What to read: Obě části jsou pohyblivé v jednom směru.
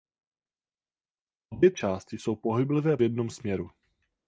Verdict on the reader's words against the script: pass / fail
pass